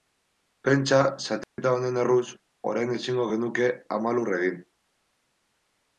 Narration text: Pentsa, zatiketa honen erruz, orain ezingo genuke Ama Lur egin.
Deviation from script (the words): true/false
false